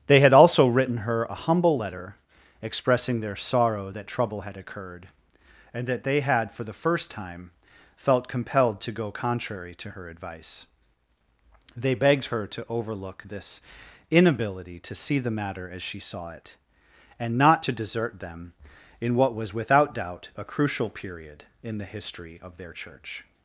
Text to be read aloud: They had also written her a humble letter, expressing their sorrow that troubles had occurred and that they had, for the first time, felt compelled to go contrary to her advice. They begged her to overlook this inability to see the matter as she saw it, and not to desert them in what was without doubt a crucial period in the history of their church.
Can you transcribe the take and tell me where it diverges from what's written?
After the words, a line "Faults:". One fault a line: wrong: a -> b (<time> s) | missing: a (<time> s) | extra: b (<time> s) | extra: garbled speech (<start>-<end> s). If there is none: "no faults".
They had also written her a humble letter, expressing their sorrow that trouble had occurred and that they had, for the first time, felt compelled to go contrary to her advice. They begged her to overlook this inability to see the matter as she saw it, and not to desert them in what was without doubt a crucial period in the history of their church.
Faults:
wrong: troubles -> trouble (4.1 s)